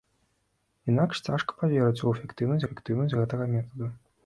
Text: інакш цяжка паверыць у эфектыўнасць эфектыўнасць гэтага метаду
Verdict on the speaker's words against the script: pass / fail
pass